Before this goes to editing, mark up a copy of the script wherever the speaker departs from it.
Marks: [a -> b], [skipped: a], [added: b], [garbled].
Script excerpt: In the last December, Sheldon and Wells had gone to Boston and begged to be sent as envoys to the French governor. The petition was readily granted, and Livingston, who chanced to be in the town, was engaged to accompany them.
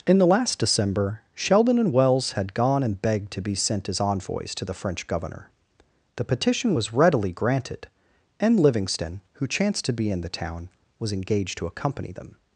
In the last December, Sheldon and Wells had gone [skipped: to Boston] and begged to be sent as envoys to the French governor. The petition was readily granted, and Livingston, who chanced to be in the town, was engaged to accompany them.